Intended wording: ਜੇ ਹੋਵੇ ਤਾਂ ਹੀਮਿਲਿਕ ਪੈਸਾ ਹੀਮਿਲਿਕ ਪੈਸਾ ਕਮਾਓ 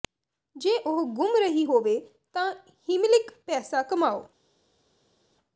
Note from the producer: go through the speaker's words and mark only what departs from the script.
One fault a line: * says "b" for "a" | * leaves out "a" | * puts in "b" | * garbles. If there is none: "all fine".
* puts in "ਉਹ ਗੁੰਮ ਰਹੀ"
* leaves out "ਹੀਮਿਲਿਕ ਪੈਸਾ"